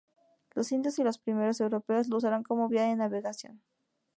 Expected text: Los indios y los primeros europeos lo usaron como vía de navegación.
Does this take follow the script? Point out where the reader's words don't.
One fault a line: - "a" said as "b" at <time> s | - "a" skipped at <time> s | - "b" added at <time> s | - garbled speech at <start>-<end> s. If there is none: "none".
none